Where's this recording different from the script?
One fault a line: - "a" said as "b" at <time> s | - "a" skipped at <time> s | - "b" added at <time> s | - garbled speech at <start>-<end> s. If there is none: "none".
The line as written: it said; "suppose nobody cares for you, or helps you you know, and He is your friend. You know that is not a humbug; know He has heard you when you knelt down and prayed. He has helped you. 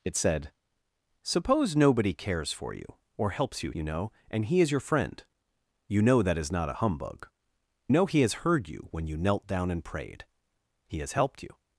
none